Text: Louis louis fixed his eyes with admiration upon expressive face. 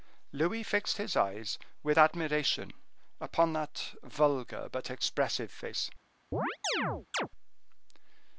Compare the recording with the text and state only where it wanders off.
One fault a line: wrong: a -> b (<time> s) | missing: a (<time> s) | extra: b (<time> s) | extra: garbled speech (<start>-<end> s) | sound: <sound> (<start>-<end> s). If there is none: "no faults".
missing: louis (0.6 s)
extra: that vulgar but (3.5 s)
sound: chirp (6.3-7.3 s)